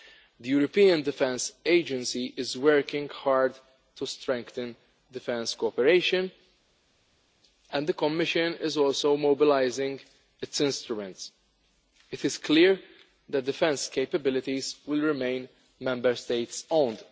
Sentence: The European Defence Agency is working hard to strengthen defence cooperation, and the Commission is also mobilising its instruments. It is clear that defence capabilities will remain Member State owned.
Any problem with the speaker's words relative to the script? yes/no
no